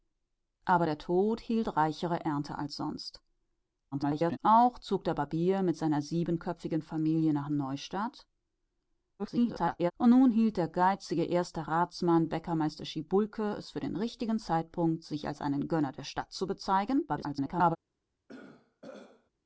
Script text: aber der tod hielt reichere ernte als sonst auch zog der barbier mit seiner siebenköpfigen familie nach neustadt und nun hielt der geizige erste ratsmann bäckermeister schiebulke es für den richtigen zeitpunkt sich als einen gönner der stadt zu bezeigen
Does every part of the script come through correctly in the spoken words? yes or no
no